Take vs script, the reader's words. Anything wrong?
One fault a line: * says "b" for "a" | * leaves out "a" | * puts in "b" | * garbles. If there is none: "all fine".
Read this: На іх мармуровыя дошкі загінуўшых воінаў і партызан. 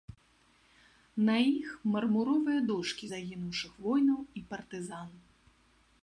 all fine